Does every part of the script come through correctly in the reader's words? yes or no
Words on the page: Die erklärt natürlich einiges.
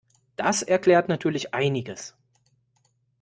no